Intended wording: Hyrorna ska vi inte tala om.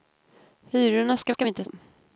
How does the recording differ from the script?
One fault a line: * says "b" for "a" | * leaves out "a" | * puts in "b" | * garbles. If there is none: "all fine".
* puts in "ska"
* leaves out "tala"